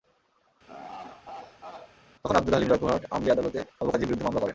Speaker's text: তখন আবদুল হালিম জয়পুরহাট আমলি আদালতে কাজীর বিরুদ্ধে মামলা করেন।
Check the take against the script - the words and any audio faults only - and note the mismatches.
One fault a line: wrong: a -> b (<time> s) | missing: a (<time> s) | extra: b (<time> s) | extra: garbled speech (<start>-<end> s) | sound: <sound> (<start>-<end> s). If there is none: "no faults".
sound: laugh (0.7-2.0 s)
extra: বাবু (3.8 s)